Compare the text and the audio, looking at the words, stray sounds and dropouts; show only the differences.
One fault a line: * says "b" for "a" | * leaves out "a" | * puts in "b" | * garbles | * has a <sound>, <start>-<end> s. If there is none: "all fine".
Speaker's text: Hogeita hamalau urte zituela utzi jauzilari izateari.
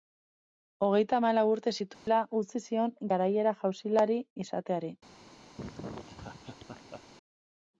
* has a dropout, 1.9-2.1 s
* puts in "zion garaiera"
* has a laugh, 5.6-7.0 s